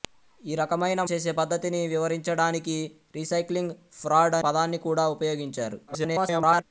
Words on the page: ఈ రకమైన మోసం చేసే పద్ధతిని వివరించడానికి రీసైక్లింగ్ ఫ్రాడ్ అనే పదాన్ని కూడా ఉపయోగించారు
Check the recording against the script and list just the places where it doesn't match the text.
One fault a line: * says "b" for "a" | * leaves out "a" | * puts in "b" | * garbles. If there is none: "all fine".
* leaves out "మోసం"
* leaves out "అనే"
* garbles